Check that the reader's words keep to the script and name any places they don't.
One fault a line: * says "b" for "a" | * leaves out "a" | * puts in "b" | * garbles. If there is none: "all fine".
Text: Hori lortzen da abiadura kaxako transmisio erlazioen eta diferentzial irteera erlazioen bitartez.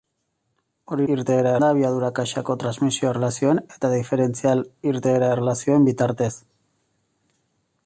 * says "irteera" for "lortzen"